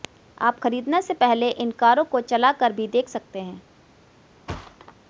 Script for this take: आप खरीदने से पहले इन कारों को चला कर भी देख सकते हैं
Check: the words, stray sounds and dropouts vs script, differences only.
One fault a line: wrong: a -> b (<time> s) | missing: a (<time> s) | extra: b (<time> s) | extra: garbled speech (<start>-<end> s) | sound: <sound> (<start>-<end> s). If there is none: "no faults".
sound: thud (4.5-4.9 s)